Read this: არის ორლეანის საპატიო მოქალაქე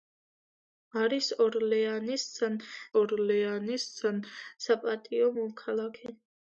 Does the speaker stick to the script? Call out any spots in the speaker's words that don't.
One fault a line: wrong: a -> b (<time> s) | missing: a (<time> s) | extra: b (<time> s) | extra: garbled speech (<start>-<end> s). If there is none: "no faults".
extra: ორლეანის (3.0 s)